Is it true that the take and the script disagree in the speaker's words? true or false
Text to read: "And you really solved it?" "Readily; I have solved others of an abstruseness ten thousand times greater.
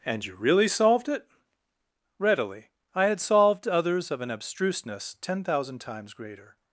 true